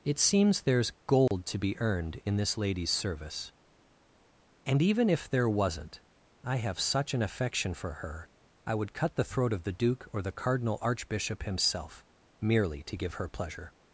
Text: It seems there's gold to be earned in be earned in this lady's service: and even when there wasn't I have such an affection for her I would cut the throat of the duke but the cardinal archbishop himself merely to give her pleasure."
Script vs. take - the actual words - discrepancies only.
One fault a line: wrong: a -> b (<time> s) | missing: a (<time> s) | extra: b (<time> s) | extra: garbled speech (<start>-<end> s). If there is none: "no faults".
missing: be earned in (2.4 s)
wrong: when -> if (5.1 s)
wrong: but -> or (10.1 s)